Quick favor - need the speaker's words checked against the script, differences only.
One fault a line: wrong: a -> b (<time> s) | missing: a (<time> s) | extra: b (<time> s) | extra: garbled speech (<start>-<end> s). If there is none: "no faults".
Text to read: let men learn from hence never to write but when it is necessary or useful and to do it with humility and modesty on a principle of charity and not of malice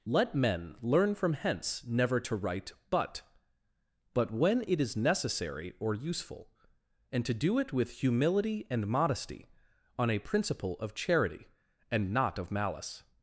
extra: but (4.2 s)